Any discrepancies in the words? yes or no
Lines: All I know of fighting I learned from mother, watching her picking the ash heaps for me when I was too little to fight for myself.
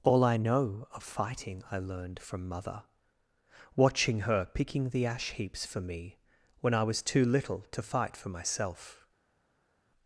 no